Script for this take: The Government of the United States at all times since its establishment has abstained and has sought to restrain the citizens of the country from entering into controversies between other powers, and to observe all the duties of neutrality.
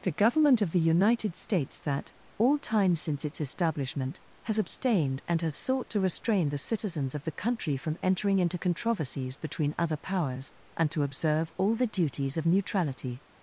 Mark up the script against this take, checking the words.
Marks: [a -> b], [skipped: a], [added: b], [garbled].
The Government of the United States [at -> that] all times since its establishment has abstained and has sought to restrain the citizens of the country from entering into controversies between other powers, and to observe all the duties of neutrality.